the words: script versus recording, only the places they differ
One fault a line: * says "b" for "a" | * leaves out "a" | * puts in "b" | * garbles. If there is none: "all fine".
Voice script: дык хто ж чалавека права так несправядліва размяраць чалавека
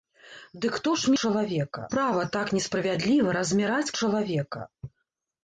all fine